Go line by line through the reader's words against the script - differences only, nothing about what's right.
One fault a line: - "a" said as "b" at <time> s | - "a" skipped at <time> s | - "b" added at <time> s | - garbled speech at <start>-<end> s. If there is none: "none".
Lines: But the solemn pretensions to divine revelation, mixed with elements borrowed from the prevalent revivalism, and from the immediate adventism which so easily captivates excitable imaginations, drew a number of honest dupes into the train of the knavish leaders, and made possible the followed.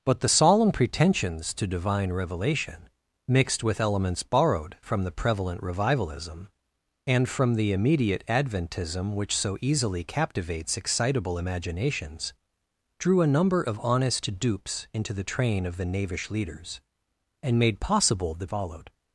none